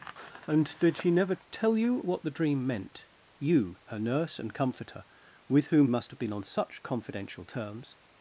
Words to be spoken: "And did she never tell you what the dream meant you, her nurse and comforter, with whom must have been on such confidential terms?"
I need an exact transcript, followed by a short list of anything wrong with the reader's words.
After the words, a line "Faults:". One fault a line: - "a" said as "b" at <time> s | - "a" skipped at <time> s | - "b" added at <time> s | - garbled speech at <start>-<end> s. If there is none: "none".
"And did she never tell you what the dream meant you, her nurse and comforter, with whom must have been on such confidential terms?"
Faults:
none